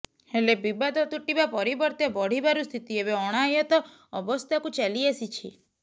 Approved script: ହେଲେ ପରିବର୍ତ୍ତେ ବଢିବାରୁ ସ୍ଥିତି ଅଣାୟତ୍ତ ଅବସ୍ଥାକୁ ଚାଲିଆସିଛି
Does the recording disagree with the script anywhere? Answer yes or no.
yes